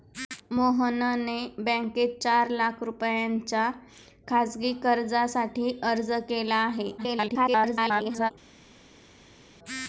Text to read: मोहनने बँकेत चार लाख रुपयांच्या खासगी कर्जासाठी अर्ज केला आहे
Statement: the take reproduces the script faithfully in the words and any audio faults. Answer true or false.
false